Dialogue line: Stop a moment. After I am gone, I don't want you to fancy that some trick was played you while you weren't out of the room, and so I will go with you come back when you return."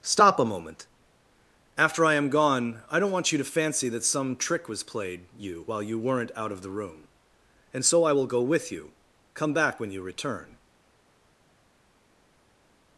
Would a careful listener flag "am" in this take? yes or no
no